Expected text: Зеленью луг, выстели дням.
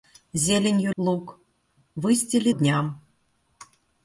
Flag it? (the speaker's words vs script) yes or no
no